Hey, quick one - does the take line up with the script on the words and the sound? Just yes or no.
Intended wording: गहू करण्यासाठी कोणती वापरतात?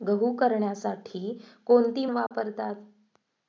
no